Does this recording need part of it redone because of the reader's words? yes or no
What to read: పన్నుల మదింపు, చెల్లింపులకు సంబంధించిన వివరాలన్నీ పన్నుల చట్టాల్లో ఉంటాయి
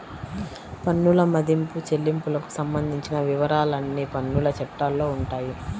no